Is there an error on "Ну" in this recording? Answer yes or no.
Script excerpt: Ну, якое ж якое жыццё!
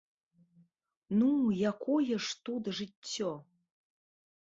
no